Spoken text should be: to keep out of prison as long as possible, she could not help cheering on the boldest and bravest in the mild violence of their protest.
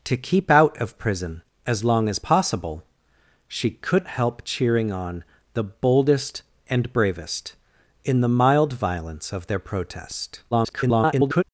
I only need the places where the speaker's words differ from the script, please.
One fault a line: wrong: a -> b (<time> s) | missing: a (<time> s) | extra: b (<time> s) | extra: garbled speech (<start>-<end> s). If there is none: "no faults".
missing: not (4.1 s)
extra: garbled speech (10.5-11.4 s)